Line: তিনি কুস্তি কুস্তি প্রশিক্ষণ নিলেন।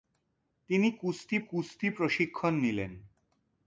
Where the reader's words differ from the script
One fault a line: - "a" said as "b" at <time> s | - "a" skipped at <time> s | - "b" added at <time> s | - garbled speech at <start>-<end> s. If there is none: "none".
none